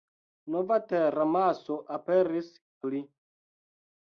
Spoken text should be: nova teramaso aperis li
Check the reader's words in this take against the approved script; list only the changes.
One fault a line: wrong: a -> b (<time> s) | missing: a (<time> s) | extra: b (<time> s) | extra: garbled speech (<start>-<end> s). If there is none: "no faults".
no faults